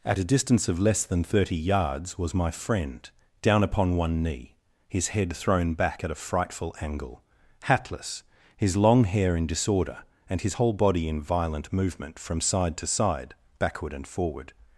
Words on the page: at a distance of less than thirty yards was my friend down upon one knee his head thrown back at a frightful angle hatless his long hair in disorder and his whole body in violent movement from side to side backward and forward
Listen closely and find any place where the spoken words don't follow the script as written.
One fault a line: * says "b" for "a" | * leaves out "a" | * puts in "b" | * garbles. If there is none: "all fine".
all fine